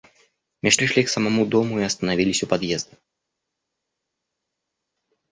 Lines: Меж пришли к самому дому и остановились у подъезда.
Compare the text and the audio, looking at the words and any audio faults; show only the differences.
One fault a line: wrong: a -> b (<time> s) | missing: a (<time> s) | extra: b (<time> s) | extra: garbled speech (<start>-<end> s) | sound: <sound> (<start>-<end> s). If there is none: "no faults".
no faults